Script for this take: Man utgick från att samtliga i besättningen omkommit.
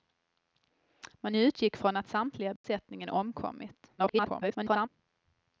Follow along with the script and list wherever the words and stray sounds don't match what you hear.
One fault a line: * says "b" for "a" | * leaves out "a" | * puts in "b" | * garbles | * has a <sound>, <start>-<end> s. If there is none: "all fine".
* has a dropout, 2.6-2.6 s
* garbles